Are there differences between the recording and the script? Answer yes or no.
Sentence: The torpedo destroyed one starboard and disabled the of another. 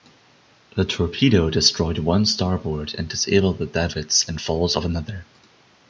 yes